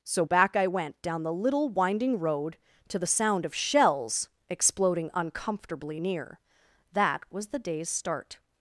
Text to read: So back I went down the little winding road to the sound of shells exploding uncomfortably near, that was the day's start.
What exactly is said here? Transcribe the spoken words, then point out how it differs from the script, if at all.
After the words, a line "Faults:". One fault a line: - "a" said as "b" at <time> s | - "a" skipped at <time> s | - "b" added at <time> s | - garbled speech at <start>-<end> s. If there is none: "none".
So back I went down the little winding road to the sound of shells exploding uncomfortably near, that was the day's start.
Faults:
none